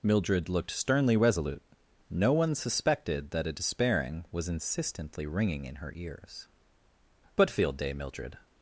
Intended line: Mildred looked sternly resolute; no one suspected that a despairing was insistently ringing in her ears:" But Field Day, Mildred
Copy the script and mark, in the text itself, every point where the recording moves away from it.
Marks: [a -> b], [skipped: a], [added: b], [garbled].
Mildred looked sternly resolute; no one suspected that a despairing was insistently ringing in her ears:" But Field Day, Mildred